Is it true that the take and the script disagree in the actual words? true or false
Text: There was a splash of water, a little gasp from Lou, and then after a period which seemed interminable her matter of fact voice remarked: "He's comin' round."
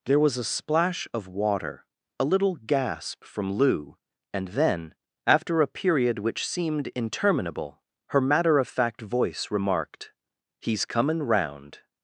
false